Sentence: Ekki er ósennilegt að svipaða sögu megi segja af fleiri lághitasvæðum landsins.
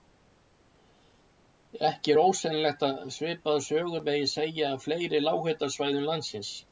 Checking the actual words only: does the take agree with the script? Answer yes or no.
yes